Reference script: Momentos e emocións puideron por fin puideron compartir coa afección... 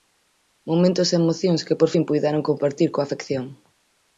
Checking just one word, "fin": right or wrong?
right